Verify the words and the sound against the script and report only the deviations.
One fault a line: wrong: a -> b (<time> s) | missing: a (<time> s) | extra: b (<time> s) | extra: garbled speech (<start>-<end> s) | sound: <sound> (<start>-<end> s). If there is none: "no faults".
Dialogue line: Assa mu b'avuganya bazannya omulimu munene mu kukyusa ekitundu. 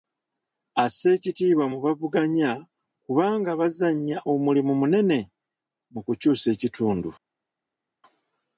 extra: ekitiibwa (1.1 s)
extra: kubanga (3.0 s)